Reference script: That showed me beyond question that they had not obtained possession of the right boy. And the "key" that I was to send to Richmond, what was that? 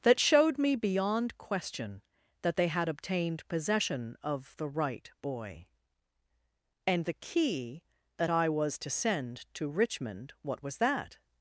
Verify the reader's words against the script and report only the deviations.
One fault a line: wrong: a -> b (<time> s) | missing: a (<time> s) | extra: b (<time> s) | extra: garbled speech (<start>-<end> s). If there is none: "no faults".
missing: not (2.9 s)